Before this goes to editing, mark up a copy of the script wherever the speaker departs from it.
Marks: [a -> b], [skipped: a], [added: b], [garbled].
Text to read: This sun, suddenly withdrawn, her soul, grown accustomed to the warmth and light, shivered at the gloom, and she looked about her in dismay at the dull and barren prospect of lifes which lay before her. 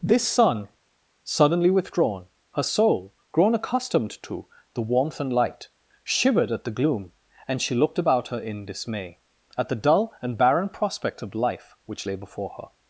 This sun, suddenly withdrawn, her soul, grown accustomed to the warmth and light, shivered at the gloom, and she looked about her in dismay at the dull and barren prospect of [lifes -> life] which lay before her.